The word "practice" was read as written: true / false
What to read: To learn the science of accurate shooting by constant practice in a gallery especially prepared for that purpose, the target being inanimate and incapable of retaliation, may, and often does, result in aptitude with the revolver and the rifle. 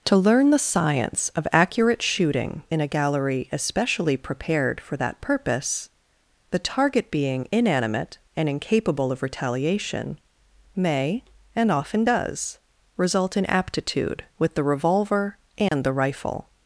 false